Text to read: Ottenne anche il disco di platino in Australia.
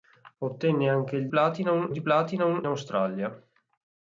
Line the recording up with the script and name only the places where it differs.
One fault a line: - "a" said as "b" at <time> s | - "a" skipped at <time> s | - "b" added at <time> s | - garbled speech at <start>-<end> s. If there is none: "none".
- "disco" said as "platino" at 1.3 s
- "in" skipped at 2.6 s